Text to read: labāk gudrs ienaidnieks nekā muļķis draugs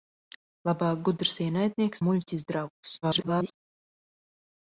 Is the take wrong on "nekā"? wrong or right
wrong